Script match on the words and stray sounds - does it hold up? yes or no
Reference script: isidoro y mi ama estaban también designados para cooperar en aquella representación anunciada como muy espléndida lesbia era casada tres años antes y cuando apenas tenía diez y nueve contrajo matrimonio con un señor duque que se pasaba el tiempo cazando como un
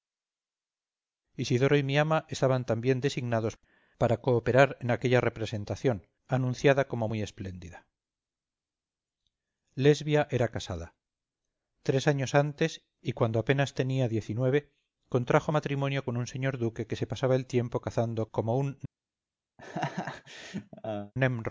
no